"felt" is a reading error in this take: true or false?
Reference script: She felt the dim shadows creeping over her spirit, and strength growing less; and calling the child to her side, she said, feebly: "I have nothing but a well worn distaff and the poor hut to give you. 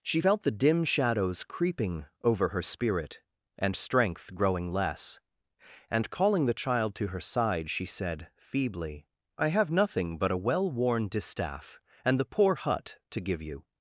false